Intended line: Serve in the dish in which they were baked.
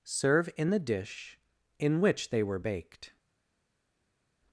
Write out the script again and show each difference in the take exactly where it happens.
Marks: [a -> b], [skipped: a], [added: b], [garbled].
Serve in the dish in which they were baked.